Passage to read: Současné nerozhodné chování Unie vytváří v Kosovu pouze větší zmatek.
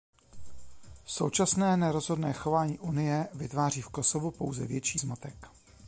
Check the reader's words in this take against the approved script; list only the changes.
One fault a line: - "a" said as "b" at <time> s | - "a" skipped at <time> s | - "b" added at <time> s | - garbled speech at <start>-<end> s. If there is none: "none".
none